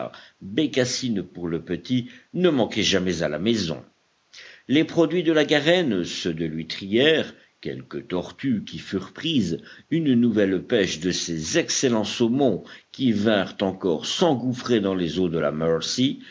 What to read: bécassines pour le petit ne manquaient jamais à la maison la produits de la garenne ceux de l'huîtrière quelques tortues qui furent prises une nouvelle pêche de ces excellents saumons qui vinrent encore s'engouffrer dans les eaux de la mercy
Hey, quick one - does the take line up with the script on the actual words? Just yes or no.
no